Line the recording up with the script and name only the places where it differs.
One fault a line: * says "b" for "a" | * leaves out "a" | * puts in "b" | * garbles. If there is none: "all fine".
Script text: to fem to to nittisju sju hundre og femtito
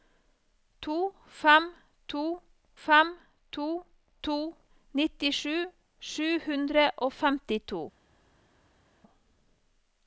* puts in "fem to"